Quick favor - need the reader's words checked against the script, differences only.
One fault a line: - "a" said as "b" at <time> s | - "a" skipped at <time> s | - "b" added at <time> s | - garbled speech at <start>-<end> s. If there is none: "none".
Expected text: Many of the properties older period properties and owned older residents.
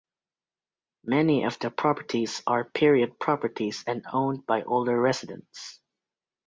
- "older" said as "are" at 2.5 s
- "by" added at 4.5 s